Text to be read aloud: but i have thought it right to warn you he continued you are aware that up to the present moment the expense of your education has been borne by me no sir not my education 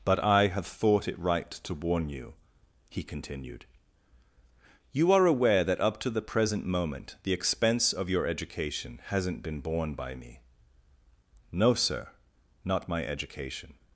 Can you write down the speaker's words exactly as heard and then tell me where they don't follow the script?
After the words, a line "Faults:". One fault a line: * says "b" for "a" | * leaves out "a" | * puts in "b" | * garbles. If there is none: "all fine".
but i have thought it right to warn you he continued you are aware that up to the present moment the expense of your education hasn't been borne by me no sir not my education
Faults:
* says "hasn't" for "has"